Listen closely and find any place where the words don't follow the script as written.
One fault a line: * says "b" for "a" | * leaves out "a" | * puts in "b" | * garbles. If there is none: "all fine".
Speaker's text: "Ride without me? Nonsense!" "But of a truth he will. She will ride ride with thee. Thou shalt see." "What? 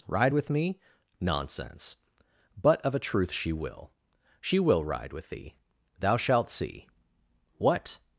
* says "with" for "without"
* says "she" for "he"
* leaves out "ride"